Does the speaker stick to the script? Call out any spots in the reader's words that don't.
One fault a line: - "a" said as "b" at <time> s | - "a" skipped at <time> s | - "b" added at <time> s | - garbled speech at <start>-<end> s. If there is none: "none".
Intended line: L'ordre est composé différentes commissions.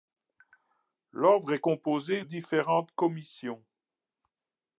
none